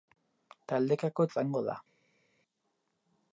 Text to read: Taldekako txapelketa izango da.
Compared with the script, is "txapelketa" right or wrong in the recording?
wrong